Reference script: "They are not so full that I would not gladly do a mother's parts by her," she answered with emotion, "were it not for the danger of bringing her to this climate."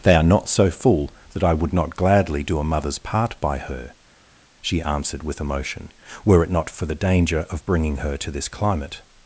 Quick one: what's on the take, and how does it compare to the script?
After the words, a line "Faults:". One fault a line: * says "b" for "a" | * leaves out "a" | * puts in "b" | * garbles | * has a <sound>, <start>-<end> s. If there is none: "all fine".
"They are not so full that I would not gladly do a mother's part by her," she answered with emotion, "were it not for the danger of bringing her to this climate."
Faults:
* says "part" for "parts"